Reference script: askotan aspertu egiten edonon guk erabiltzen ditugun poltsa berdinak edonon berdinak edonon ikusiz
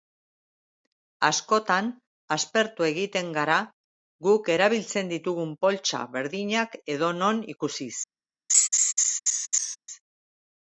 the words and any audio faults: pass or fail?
fail